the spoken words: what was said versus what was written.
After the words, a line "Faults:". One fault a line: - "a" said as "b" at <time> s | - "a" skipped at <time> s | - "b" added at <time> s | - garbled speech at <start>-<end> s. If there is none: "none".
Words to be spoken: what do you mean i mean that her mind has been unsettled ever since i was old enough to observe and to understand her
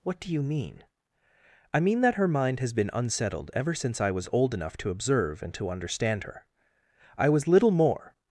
what do you mean i mean that her mind has been unsettled ever since i was old enough to observe and to understand her i was little more
Faults:
- "i was little more" added at 7.2 s